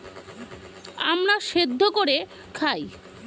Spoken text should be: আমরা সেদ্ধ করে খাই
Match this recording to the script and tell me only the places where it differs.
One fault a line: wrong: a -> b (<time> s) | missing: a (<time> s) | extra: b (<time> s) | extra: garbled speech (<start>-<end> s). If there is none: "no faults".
no faults